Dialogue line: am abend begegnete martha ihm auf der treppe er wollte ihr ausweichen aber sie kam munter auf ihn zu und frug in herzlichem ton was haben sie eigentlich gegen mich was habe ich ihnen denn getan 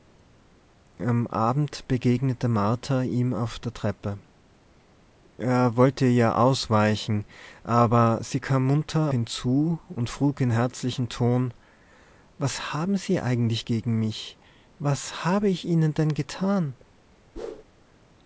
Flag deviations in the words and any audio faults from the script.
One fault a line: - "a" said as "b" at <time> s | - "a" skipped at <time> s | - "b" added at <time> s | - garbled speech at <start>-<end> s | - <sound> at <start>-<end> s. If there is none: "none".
- "auf" skipped at 9.1 s
- whoosh at 17.4-17.6 s